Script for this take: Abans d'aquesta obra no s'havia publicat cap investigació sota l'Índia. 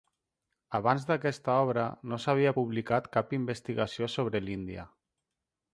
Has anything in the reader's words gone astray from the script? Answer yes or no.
yes